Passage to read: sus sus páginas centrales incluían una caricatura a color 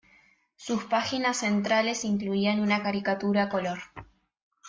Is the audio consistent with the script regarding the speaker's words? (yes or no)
no